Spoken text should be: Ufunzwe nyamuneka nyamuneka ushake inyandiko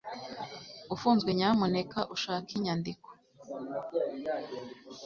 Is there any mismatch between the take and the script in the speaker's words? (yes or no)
yes